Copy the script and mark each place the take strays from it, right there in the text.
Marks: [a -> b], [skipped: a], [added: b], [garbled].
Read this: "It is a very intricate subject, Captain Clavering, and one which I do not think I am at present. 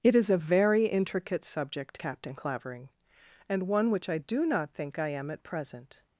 "It is a very intricate subject, Captain Clavering, and one which I do not think I am at present.